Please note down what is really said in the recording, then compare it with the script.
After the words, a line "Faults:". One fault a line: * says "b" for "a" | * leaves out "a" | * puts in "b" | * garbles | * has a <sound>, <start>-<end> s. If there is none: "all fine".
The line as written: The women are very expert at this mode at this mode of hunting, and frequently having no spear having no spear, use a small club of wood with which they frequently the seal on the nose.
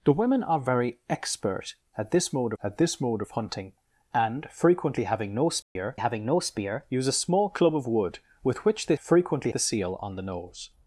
The women are very expert at this mode at this mode of hunting, and frequently having no spear having no spear, use a small club of wood with which they frequently the seal on the nose.
Faults:
* has a dropout, 5.6-5.8 s